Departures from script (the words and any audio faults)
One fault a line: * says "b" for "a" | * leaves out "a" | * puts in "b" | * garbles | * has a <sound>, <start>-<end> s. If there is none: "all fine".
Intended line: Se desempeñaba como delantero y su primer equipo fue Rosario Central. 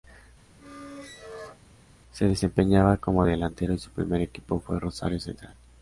* has a squeak, 0.6-1.6 s